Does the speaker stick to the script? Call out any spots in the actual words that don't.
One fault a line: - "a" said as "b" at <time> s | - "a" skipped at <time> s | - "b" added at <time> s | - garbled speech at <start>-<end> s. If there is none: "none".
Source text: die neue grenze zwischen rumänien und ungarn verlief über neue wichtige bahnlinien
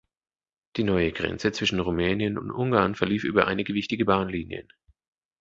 - "neue" said as "einige" at 3.5 s